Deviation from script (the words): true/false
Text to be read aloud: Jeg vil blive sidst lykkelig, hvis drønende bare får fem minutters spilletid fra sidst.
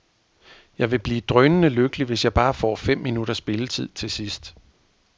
true